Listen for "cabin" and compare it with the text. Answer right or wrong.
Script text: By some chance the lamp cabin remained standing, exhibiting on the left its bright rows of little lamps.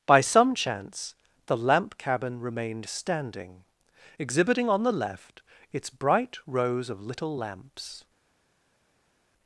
right